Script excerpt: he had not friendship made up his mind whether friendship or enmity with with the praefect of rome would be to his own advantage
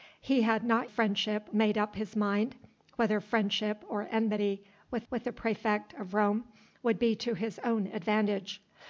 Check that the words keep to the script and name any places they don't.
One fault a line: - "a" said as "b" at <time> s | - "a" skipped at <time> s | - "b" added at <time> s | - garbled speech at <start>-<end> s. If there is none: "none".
none